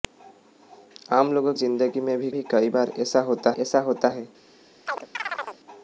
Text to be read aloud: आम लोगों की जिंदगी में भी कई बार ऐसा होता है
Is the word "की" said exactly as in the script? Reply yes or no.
no